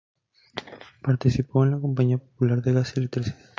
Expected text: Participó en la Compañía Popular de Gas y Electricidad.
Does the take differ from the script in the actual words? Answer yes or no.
no